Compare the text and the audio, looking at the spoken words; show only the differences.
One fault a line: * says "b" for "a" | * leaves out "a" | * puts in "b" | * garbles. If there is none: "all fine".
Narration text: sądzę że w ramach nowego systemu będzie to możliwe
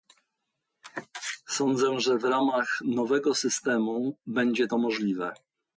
all fine